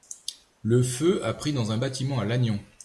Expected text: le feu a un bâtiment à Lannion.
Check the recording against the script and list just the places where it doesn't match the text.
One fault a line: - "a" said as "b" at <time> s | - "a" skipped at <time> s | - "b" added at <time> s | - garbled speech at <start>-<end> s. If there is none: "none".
- "pris dans" added at 1.3 s